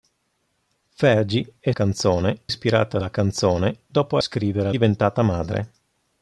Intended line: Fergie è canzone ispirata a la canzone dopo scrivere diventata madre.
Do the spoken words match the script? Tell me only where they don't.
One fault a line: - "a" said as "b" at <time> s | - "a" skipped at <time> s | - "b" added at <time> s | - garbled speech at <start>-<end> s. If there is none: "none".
none